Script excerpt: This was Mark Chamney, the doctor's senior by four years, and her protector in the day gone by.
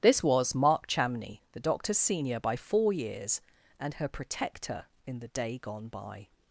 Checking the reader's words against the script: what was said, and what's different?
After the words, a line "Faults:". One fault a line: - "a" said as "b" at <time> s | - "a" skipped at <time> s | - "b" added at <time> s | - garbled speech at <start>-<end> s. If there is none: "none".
This was Mark Chamney, the doctor's senior by four years, and her protector in the day gone by.
Faults:
none